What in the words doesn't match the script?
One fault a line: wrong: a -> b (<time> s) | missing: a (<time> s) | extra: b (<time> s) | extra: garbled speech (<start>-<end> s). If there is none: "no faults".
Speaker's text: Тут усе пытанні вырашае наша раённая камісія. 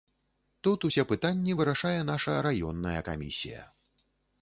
no faults